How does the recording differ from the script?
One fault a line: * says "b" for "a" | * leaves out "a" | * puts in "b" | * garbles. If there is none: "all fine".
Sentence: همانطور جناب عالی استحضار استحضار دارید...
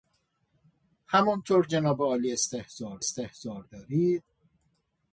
all fine